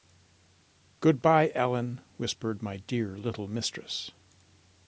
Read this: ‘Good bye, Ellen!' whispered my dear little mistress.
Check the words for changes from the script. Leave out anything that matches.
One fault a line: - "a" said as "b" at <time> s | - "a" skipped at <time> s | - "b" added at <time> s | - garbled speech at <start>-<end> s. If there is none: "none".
none